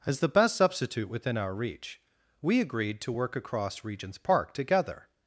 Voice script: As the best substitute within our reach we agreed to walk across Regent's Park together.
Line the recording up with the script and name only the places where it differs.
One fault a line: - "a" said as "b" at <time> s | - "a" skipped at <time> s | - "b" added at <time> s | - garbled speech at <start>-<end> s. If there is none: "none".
- "walk" said as "work" at 3.1 s